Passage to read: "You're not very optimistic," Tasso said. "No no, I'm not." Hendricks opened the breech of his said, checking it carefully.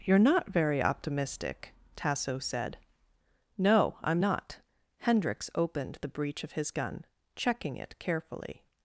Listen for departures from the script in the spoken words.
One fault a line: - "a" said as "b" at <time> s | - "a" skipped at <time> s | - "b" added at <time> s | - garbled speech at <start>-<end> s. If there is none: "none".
- "no" skipped at 4.0 s
- "said" said as "gun" at 6.7 s